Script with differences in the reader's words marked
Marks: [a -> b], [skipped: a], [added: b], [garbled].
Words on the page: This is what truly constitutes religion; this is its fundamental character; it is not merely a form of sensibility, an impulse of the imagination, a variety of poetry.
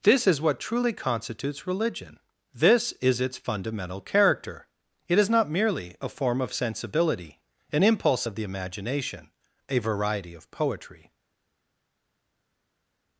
This is what truly constitutes religion; this is its fundamental character; it is not merely a form of sensibility, an impulse of the imagination, a variety of poetry.